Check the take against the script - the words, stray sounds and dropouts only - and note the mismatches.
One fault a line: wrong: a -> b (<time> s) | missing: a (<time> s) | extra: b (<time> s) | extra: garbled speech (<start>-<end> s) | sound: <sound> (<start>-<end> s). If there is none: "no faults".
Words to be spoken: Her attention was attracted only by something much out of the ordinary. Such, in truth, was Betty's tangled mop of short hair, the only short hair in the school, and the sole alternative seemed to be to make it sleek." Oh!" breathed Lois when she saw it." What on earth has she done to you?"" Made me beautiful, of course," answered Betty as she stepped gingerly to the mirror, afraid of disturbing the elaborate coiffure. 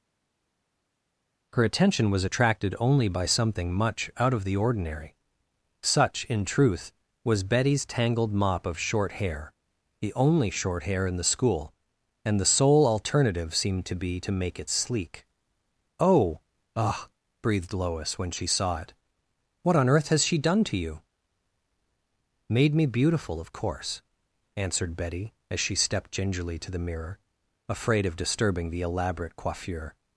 extra: ugh (16.8 s)